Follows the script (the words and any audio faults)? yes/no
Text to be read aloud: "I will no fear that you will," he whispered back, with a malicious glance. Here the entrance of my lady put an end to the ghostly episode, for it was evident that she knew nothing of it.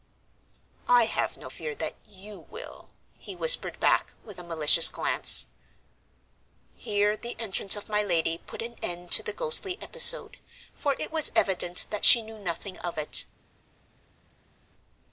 no